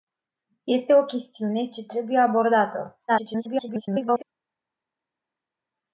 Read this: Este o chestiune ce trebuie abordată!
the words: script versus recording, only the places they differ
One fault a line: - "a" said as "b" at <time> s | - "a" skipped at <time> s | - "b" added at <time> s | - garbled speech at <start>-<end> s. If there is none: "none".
- garbled speech at 3.1-4.2 s